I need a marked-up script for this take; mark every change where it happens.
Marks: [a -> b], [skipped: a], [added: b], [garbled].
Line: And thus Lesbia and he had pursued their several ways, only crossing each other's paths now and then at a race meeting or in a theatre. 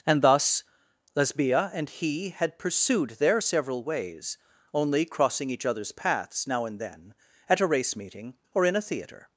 And thus Lesbia and he had pursued their several ways, only crossing each other's paths now and then at a race meeting or in a theatre.